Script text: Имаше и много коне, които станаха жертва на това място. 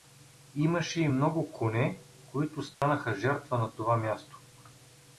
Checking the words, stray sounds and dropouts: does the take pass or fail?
fail